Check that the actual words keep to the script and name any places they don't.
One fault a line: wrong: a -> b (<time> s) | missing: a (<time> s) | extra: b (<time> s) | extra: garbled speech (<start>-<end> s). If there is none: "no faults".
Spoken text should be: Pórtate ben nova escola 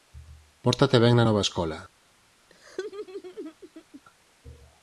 extra: na (1.2 s)